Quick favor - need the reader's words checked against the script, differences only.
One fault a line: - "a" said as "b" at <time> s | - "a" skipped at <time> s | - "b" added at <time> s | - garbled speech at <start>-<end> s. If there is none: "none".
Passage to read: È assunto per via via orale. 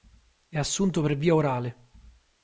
- "via" skipped at 1.4 s